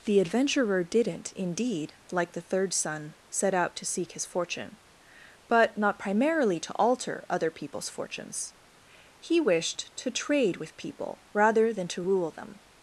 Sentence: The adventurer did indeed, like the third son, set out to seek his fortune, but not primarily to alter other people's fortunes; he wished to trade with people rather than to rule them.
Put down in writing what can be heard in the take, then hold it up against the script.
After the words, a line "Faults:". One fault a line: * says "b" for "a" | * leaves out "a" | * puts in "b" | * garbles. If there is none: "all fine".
The adventurer didn't indeed, like the third son, set out to seek his fortune, but not primarily to alter other people's fortunes; he wished to trade with people rather than to rule them.
Faults:
* says "didn't" for "did"